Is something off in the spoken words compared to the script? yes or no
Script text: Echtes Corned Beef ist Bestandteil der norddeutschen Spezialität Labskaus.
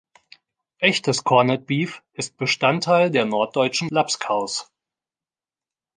yes